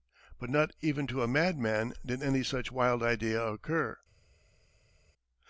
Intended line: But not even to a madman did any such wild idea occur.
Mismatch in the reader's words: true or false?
false